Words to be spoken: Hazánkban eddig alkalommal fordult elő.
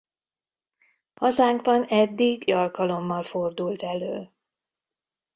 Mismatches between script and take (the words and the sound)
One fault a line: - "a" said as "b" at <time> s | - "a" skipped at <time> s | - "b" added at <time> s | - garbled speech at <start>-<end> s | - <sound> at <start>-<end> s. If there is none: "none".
none